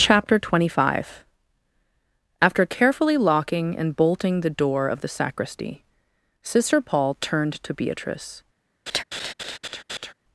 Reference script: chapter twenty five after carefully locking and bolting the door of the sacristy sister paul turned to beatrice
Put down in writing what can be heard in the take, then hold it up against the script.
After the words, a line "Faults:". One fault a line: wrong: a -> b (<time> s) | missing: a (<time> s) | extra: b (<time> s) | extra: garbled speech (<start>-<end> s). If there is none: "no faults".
chapter twenty five after carefully locking and bolting the door of the sacristy sister paul turned to beatrice
Faults:
no faults